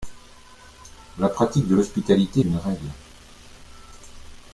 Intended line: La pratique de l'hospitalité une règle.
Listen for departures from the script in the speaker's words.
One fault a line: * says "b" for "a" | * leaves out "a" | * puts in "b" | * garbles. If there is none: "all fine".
all fine